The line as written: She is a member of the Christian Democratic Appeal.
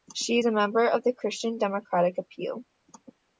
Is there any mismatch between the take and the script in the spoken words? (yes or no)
no